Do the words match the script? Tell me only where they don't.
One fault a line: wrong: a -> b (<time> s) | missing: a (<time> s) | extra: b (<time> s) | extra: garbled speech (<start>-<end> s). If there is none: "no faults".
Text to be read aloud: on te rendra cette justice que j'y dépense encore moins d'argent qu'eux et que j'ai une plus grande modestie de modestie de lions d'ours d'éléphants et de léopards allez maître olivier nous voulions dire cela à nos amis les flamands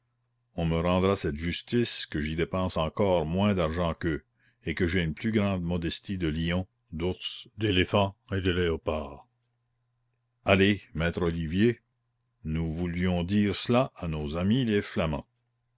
wrong: te -> me (0.7 s)
missing: modestie de (6.3 s)